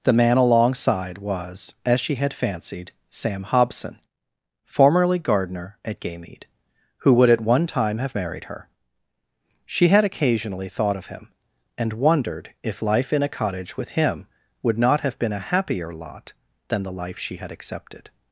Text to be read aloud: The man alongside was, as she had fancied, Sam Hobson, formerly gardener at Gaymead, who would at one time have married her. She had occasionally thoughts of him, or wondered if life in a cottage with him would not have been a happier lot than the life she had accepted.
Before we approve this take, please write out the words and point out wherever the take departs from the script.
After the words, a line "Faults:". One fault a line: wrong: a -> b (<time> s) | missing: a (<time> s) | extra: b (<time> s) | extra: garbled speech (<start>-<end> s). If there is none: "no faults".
The man alongside was, as she had fancied, Sam Hobson, formerly gardener at Gaymead, who would at one time have married her. She had occasionally thought of him, and wondered if life in a cottage with him would not have been a happier lot than the life she had accepted.
Faults:
wrong: thoughts -> thought (10.7 s)
wrong: or -> and (11.8 s)